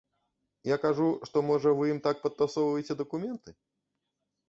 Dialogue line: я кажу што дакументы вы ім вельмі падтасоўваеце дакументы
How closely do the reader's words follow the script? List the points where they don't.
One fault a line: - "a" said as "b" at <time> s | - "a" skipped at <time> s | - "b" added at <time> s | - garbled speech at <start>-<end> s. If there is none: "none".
- "дакументы" said as "можа" at 1.5 s
- "вельмі" said as "так" at 2.1 s